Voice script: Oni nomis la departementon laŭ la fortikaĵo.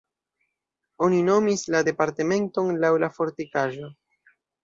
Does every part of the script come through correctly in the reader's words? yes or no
yes